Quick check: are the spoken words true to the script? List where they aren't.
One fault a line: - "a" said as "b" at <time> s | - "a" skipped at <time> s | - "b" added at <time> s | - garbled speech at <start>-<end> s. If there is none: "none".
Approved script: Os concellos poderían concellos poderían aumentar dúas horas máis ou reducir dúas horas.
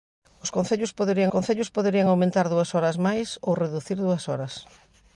none